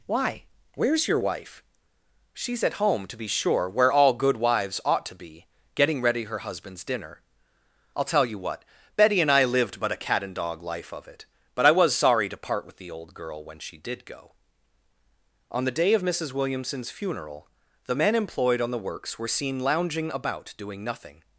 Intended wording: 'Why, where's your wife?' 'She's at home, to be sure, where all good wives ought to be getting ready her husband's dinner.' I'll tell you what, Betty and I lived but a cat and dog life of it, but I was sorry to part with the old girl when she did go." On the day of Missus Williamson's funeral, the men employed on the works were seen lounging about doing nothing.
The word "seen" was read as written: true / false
true